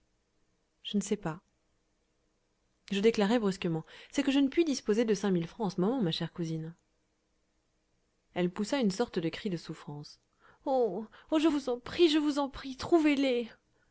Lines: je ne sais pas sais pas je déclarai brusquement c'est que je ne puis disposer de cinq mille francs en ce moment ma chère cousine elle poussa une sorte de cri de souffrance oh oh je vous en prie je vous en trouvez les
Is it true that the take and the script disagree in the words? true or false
true